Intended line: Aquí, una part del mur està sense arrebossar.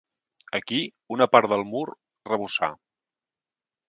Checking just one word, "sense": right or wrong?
wrong